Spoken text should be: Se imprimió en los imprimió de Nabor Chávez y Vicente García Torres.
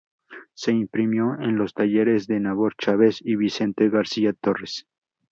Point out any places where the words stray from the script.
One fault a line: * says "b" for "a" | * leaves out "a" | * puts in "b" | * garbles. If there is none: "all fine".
* says "talleres" for "imprimió"